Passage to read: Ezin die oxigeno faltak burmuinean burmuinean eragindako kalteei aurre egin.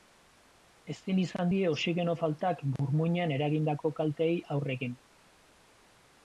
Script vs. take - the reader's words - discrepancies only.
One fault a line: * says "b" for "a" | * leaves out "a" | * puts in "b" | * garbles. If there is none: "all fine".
* puts in "izan"
* leaves out "burmuinean"